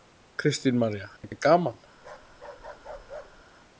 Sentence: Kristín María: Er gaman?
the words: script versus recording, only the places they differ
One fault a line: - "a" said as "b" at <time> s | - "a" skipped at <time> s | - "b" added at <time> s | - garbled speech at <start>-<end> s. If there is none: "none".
none